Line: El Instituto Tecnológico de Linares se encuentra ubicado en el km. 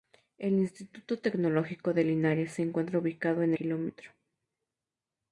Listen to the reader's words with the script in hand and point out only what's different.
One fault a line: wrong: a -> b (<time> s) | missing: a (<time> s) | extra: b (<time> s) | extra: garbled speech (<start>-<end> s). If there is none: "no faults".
missing: el (3.5 s)